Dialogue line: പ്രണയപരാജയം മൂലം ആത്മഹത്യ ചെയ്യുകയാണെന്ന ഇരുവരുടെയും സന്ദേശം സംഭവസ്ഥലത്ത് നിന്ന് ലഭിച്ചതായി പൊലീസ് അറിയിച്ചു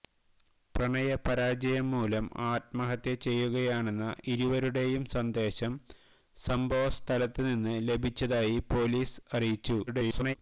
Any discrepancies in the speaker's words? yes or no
yes